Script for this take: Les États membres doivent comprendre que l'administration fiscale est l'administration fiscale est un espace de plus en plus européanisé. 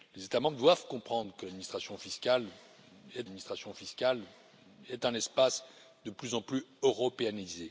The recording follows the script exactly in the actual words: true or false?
true